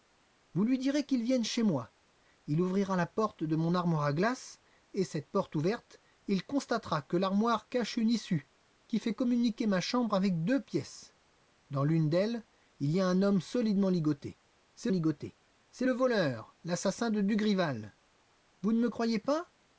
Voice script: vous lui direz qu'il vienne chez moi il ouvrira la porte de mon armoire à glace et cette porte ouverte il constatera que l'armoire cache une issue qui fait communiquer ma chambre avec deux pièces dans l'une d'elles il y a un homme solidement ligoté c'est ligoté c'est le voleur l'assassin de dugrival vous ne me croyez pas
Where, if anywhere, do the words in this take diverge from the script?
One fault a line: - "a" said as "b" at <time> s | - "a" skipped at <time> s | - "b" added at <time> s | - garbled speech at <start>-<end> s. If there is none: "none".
none